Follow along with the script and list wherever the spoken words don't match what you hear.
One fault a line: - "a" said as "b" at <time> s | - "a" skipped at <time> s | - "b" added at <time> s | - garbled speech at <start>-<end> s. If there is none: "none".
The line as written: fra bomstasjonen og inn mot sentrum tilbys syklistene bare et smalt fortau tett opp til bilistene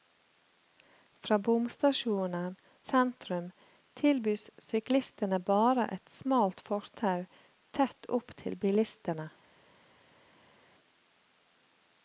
- "og inn mot" skipped at 2.5 s